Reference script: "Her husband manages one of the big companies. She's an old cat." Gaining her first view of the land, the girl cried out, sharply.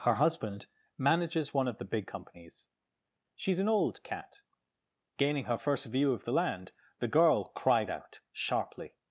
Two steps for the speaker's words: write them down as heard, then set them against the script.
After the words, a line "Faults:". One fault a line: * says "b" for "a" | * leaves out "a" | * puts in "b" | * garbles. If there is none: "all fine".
"Her husband manages one of the big companies. She's an old cat." Gaining her first view of the land, the girl cried out, sharply.
Faults:
all fine